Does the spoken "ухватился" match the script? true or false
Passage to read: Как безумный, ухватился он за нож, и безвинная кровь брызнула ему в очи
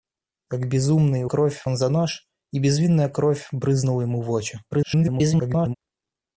false